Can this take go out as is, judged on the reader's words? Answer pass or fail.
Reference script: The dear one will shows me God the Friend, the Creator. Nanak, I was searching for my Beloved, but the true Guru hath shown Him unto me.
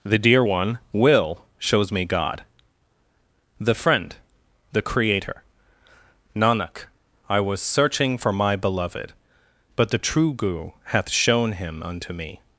pass